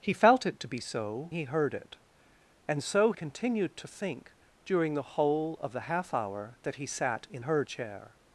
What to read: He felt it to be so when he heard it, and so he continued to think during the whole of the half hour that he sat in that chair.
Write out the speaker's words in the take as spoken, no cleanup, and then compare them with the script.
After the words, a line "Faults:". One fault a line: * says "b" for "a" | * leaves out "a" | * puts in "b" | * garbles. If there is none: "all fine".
He felt it to be so he heard it, and so continued to think during the whole of the half hour that he sat in heard chair.
Faults:
* leaves out "when"
* leaves out "he"
* says "heard" for "that"